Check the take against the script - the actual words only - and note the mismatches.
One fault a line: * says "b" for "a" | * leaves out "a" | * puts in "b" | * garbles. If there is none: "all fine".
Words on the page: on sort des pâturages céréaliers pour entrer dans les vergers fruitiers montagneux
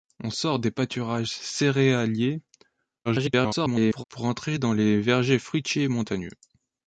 * garbles